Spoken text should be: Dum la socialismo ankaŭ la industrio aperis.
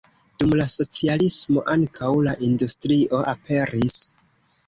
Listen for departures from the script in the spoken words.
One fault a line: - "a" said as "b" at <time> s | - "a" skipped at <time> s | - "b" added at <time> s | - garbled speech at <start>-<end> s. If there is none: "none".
none